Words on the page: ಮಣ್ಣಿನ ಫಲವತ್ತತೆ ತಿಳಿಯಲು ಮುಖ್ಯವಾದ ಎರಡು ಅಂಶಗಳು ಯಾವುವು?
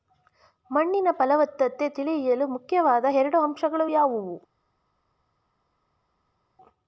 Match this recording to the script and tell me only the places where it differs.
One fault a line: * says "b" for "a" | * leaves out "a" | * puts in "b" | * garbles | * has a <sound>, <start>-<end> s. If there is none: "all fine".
all fine